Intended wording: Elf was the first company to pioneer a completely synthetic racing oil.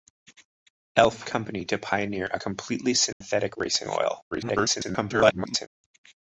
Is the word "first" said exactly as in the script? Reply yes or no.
no